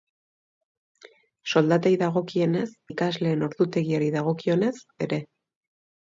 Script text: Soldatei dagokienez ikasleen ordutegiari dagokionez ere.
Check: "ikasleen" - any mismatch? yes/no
no